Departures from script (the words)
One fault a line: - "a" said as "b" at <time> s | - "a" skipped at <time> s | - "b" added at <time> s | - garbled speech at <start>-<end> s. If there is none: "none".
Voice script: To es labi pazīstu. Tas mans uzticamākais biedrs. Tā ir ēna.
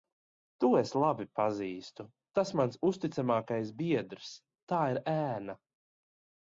none